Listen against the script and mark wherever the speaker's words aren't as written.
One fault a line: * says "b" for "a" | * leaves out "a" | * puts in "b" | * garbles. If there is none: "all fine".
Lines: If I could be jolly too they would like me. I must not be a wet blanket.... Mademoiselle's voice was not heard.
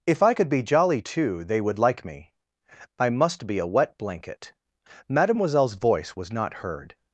* leaves out "not"